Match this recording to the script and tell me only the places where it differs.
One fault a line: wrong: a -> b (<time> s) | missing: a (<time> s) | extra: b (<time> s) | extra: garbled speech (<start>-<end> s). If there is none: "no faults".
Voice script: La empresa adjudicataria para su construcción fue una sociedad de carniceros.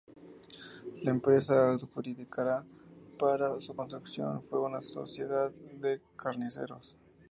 no faults